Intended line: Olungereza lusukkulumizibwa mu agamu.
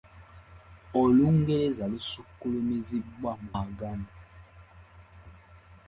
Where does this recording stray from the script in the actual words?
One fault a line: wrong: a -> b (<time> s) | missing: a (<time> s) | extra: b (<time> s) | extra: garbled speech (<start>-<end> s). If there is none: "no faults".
no faults